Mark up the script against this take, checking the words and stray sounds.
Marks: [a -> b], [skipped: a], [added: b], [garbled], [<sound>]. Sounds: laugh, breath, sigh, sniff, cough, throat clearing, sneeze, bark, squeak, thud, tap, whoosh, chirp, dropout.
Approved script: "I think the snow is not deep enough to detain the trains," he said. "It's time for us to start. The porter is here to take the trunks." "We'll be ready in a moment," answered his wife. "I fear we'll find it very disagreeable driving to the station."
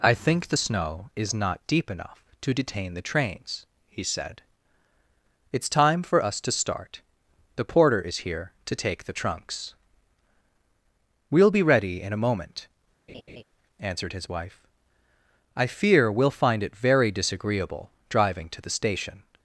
"I think the snow is not deep enough to detain the trains," he said. "It's time for us to start. The porter is here to take the trunks." "We'll be ready in a moment," [laugh] answered his wife. "I fear we'll find it very disagreeable driving to the station."